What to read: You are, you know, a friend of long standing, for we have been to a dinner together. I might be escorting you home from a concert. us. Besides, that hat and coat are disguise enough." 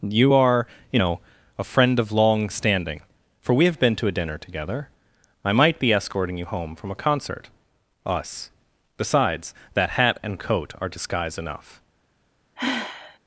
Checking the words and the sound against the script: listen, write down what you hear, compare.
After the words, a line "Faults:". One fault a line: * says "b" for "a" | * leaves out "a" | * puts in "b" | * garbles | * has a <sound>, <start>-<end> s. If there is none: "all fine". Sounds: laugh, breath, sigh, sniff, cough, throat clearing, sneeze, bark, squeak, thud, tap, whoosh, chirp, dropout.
You are, you know, a friend of long standing, for we have been to a dinner together. I might be escorting you home from a concert. us. Besides, that hat and coat are disguise enough."
Faults:
* has a sigh, 12.6-13.2 s